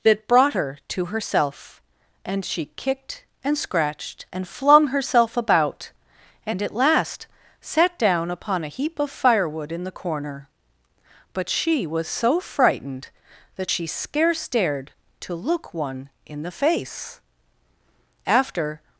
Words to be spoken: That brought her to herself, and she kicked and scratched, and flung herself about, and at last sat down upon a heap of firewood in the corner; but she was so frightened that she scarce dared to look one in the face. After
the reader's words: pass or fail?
pass